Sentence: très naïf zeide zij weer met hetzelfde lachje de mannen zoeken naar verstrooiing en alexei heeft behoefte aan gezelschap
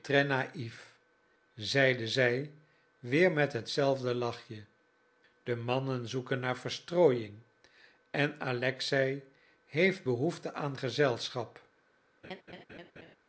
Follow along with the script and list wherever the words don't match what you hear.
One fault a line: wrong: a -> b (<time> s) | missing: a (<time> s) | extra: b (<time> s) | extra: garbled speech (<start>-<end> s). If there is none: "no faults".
no faults